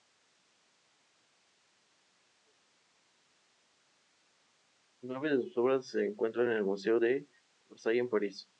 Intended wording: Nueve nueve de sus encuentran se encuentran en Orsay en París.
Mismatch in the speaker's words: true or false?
true